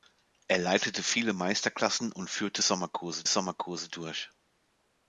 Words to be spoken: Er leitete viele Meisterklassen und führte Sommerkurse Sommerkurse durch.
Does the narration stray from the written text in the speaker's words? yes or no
no